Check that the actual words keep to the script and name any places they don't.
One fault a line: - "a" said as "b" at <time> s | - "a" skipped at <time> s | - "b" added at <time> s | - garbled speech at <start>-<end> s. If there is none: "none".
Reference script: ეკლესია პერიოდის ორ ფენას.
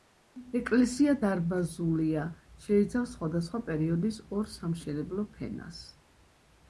- "დარბაზულია შეიცავს სხვადასხვა" added at 1.2 s
- "სამშენებლო" added at 4.6 s